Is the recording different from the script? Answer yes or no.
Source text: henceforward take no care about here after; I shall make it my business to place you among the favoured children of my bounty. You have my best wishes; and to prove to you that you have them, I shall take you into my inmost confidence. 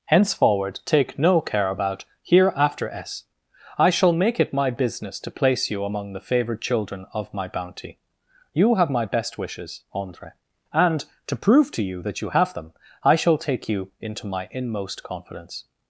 yes